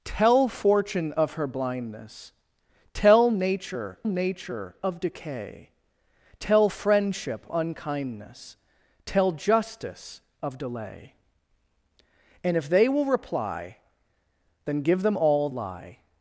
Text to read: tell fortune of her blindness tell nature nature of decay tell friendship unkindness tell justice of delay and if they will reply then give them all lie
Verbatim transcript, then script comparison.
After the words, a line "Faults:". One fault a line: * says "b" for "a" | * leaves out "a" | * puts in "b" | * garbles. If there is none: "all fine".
tell fortune of her blindness tell nature nature of decay tell friendship unkindness tell justice of delay and if they will reply then give them all lie
Faults:
all fine